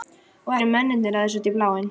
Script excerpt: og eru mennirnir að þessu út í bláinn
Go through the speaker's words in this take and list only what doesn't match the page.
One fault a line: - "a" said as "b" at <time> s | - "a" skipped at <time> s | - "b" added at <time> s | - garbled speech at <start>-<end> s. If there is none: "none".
none